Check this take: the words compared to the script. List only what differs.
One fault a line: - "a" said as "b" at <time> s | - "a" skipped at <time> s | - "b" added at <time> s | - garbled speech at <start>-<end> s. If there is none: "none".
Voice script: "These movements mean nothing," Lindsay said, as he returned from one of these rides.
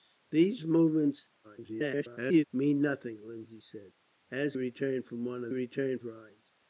- garbled speech at 1.4-2.4 s
- "he" skipped at 4.6 s
- "these" said as "returned" at 5.5 s